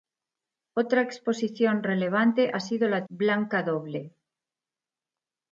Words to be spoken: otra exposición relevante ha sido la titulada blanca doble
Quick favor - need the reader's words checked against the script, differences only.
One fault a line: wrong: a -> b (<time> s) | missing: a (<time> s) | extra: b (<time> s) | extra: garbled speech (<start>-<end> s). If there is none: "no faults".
missing: titulada (3.0 s)